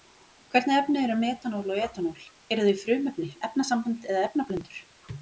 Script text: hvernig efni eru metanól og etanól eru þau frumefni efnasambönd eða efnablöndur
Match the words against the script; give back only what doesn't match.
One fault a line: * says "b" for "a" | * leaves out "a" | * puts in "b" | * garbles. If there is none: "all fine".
all fine